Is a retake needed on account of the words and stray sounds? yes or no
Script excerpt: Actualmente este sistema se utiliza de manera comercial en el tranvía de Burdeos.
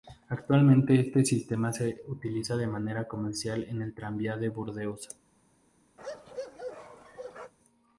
yes